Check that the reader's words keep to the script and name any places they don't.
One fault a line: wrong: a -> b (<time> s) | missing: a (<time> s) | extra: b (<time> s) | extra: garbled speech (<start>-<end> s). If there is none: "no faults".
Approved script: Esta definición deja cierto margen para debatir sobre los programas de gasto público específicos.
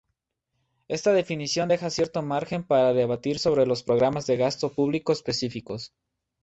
no faults